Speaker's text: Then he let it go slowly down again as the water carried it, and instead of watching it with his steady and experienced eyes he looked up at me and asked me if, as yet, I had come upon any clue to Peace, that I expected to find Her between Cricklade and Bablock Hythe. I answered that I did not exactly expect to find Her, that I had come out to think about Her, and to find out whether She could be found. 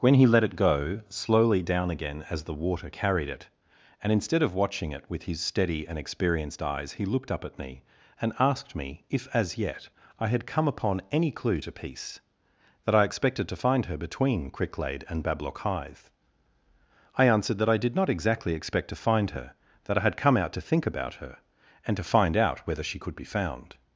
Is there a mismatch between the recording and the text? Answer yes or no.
yes